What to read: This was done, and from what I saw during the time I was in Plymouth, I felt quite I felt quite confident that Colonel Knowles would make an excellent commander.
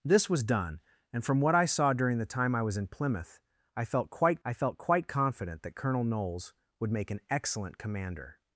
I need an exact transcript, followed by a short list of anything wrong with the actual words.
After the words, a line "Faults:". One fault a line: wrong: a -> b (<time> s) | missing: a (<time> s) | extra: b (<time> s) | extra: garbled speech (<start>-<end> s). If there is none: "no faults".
This was done, and from what I saw during the time I was in Plymouth, I felt quite I felt quite confident that Colonel Knowles would make an excellent commander.
Faults:
no faults